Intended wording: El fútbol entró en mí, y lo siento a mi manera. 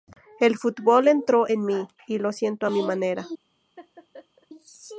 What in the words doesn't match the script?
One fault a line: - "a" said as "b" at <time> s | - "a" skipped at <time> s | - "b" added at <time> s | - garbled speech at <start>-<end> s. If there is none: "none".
none